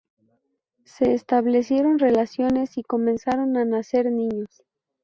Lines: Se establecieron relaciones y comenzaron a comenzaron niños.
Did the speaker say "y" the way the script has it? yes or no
yes